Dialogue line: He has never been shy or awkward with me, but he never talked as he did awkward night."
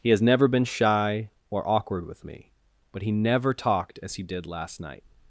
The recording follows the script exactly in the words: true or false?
false